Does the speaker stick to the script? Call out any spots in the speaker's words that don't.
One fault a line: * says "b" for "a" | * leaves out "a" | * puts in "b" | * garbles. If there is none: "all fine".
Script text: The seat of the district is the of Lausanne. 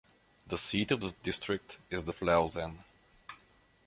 all fine